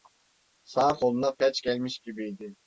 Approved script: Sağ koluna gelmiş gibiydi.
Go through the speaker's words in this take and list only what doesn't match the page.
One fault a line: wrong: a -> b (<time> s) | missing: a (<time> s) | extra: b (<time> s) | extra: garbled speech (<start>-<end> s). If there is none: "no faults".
extra: felç (1.4 s)